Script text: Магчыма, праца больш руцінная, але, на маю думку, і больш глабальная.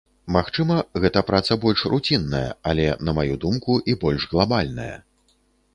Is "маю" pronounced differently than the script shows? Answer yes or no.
no